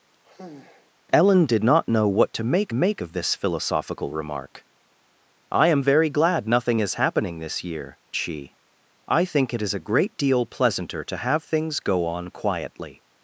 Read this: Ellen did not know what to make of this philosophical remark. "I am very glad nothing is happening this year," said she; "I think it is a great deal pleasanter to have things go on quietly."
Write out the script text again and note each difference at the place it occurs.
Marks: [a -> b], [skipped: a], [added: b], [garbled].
Ellen did not know what to make [added: make] of this philosophical remark. "I am very glad nothing is happening this year," [skipped: said] she; "I think it is a great deal pleasanter to have things go on quietly."